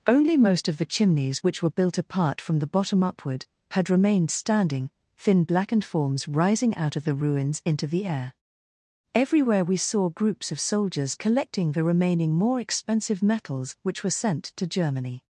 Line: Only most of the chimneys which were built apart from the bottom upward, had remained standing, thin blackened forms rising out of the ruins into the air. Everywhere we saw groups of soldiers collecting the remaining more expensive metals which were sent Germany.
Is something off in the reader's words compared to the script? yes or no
yes